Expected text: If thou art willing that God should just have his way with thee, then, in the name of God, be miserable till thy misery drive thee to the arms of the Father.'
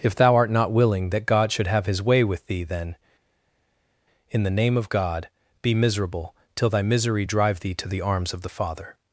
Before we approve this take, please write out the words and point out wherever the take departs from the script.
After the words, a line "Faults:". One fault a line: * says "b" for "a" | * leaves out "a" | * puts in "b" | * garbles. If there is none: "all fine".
If thou art not willing that God should have his way with thee, then, in the name of God, be miserable till thy misery drive thee to the arms of the Father.'
Faults:
* puts in "not"
* leaves out "just"